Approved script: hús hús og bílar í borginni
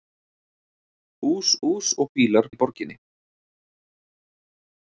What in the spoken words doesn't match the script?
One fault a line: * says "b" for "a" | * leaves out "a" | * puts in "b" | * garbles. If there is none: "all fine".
all fine